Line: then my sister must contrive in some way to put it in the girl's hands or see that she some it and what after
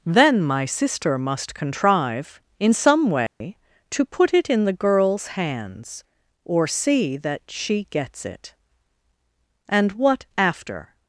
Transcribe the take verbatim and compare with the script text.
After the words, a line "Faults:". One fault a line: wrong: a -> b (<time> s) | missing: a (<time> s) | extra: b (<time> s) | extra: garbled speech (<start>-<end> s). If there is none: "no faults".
then my sister must contrive in some way to put it in the girl's hands or see that she gets it and what after
Faults:
wrong: some -> gets (7.9 s)